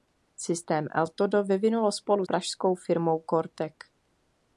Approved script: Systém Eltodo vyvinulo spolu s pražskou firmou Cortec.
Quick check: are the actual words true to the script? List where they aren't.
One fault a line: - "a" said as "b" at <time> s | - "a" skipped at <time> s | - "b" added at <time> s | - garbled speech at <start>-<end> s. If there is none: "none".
- "s" skipped at 2.2 s